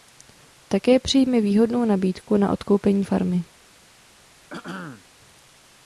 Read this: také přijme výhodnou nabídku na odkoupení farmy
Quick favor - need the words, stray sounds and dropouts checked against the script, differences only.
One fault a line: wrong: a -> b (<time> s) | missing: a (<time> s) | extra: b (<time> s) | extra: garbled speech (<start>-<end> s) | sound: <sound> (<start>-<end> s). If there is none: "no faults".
sound: throat clearing (4.5-5.0 s)